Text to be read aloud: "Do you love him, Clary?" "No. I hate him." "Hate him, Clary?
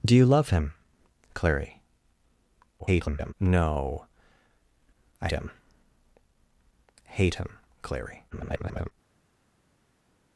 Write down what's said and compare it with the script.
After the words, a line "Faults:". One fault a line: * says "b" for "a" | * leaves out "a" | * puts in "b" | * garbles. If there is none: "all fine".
"Do you love him, Clary?" [garbled] "No. I him." "Hate him, Clary? [garbled]
Faults:
* garbles
* leaves out "hate"
* garbles